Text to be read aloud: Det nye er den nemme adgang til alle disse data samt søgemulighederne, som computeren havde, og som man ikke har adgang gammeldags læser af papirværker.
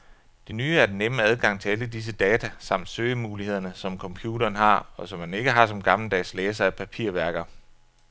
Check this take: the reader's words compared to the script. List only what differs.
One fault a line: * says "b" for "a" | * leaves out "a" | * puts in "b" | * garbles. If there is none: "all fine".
* says "har" for "havde"
* says "som" for "adgang"